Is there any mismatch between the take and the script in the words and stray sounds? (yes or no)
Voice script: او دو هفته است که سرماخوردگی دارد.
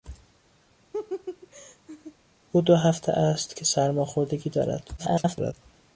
yes